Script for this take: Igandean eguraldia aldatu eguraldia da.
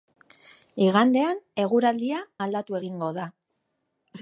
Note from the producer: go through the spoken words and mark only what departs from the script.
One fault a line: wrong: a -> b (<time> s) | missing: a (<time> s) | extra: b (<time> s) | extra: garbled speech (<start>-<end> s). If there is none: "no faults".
wrong: eguraldia -> egingo (2.8 s)